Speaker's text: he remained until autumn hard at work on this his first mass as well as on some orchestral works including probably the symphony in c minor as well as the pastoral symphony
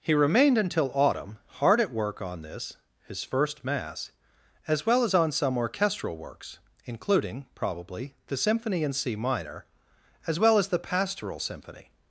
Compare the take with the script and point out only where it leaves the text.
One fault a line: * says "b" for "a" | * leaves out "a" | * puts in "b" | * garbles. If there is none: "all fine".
all fine